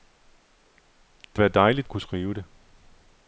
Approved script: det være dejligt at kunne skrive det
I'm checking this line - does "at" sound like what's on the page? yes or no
yes